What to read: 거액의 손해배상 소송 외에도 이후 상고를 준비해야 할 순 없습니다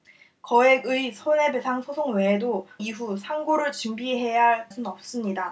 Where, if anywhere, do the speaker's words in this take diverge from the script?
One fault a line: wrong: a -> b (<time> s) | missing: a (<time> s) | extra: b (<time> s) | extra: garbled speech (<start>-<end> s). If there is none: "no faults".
no faults